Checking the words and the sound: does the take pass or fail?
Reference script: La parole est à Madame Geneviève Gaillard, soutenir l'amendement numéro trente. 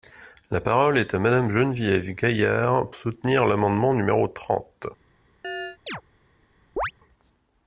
fail